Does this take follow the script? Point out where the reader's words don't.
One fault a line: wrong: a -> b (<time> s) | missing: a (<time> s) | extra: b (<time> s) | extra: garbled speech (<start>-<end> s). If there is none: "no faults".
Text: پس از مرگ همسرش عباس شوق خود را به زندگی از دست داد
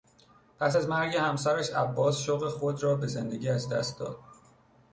no faults